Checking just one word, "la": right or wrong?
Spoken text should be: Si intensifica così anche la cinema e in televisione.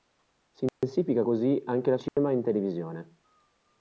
right